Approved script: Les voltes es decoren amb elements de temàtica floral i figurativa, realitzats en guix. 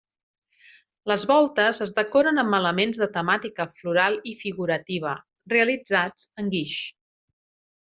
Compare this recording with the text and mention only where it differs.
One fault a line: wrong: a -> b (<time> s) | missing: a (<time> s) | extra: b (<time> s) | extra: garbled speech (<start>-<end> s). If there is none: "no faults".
no faults